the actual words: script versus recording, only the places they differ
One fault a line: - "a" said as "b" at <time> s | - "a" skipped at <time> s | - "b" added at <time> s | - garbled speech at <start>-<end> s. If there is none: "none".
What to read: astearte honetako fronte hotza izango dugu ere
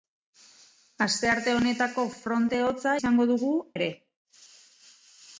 none